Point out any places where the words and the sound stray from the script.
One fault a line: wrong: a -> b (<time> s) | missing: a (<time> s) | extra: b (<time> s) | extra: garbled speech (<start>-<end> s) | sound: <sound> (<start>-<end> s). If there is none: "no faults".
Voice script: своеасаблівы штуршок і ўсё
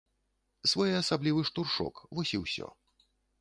extra: вось (2.2 s)